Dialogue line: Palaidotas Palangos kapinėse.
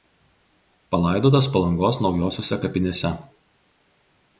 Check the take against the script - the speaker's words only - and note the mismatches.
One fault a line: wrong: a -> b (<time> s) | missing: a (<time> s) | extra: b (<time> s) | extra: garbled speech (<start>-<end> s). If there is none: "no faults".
extra: naujosiose (2.1 s)